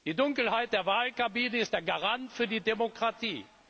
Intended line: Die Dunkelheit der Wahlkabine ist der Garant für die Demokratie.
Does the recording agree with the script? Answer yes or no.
yes